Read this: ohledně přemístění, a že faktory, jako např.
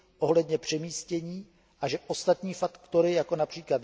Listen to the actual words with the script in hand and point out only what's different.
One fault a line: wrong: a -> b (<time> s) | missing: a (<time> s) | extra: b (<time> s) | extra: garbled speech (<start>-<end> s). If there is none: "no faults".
extra: ostatní (2.1 s)